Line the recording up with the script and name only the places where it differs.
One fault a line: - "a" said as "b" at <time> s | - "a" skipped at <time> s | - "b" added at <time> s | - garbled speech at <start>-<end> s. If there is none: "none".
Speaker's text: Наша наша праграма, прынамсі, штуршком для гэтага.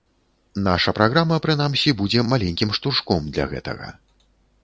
- "наша" skipped at 0.9 s
- "будзе маленькім" added at 2.0 s